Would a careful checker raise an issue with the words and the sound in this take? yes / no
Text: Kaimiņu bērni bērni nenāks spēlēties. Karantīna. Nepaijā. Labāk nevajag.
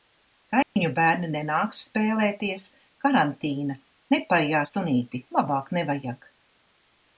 yes